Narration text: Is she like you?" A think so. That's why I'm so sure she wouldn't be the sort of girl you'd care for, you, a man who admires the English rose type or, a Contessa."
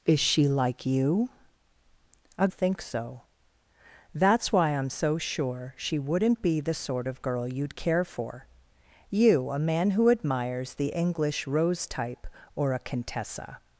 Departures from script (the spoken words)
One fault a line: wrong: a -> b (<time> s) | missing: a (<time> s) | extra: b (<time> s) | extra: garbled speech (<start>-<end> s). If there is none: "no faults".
no faults